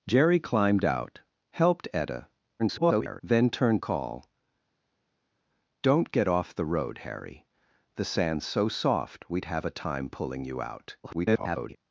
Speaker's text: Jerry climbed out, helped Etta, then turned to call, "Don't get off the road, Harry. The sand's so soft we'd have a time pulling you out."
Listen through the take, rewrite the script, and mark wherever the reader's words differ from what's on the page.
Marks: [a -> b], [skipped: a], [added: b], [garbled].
Jerry climbed out, helped Etta, [garbled] then turned [skipped: to] call, "Don't get off the road, Harry. The sand's so soft we'd have a time pulling you out." [garbled]